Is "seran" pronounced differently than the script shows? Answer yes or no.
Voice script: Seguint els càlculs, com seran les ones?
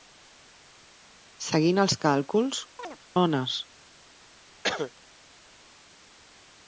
yes